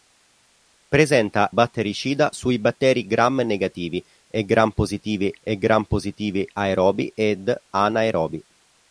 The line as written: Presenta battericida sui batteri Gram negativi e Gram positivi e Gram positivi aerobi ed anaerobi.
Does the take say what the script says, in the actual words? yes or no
yes